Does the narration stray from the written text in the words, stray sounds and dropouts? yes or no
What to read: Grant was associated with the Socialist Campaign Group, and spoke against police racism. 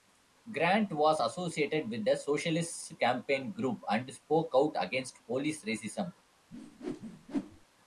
yes